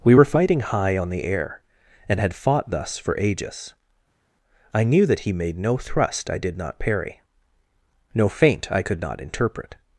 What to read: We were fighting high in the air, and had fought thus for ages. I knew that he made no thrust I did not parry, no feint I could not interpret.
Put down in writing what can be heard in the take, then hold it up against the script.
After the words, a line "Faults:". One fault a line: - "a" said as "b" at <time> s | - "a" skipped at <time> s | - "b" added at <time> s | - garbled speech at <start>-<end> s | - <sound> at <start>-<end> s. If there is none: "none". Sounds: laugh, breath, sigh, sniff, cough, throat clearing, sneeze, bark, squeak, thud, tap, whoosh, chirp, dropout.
We were fighting high on the air, and had fought thus for ages. I knew that he made no thrust I did not parry, no feint I could not interpret.
Faults:
- "in" said as "on" at 1.0 s